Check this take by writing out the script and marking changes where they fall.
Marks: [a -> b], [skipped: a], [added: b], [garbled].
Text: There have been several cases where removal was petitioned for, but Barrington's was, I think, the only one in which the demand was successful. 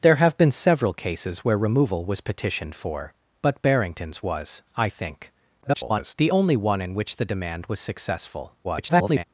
There have been several cases where removal was petitioned for, but Barrington's was, I think, [garbled] the only one in which the demand was successful. [garbled]